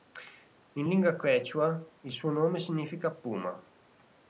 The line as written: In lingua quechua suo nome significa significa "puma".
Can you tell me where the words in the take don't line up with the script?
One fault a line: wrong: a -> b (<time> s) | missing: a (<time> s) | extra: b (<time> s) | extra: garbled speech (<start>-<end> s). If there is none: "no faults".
extra: il (2.0 s)
missing: significa (3.1 s)